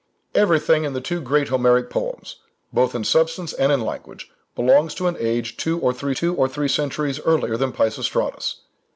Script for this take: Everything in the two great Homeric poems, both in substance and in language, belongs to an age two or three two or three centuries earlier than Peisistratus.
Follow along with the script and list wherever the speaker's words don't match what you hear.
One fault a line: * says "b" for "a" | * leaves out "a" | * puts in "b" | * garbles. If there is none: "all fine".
all fine